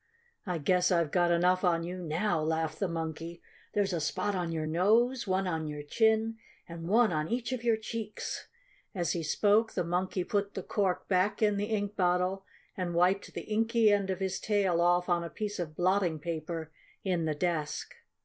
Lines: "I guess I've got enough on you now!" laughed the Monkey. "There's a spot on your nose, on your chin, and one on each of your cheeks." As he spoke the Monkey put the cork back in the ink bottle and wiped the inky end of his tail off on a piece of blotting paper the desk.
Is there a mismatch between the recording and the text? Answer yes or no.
yes